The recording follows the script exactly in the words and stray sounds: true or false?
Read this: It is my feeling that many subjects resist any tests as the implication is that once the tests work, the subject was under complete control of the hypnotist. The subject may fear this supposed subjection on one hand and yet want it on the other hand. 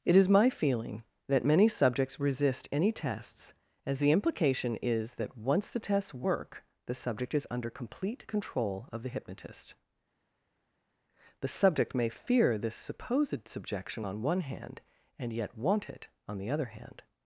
false